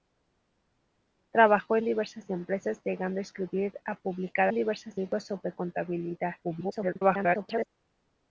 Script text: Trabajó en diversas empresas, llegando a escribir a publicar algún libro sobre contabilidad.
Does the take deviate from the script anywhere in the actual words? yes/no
yes